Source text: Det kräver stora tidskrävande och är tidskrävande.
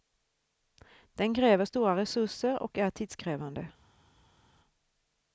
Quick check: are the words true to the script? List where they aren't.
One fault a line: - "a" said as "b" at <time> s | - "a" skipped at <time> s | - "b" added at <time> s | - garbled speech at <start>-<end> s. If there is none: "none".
- "Det" said as "Den" at 1.1 s
- "tidskrävande" said as "resurser" at 1.9 s